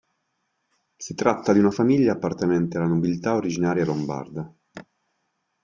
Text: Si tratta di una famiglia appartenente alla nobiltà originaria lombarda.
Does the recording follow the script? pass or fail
pass